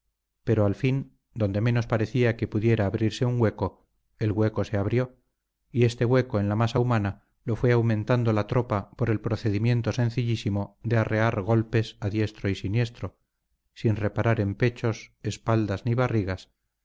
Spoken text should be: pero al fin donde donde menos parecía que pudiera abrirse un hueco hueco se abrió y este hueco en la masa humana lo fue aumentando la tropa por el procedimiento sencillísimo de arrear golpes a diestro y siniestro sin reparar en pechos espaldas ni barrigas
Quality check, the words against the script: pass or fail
fail